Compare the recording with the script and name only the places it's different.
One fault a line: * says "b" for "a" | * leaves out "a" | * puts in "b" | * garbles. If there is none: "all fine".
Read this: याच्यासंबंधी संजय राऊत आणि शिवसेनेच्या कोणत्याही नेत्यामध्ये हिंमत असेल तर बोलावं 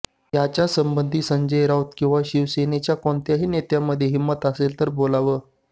* says "किंवा" for "आणि"